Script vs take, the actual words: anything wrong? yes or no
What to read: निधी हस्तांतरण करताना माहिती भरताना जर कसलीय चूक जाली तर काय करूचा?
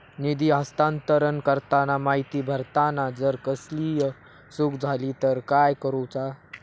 no